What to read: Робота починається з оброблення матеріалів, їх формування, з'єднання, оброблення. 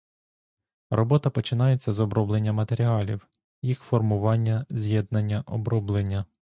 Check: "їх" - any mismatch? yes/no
no